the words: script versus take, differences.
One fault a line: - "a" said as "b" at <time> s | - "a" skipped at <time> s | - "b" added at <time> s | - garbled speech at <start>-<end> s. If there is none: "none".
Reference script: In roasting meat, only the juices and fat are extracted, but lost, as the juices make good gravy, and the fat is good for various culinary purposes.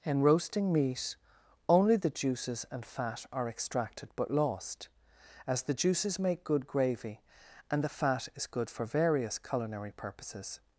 none